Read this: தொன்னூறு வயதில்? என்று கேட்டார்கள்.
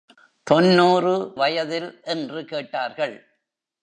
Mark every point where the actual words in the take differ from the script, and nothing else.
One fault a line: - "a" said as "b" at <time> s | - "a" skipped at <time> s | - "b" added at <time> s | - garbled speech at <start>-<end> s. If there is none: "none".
none